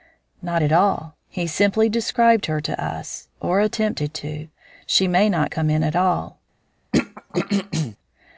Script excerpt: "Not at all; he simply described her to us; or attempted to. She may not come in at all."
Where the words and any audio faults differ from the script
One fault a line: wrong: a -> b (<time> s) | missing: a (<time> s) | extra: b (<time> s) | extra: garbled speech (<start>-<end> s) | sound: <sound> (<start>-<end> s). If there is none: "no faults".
sound: throat clearing (6.9-8.0 s)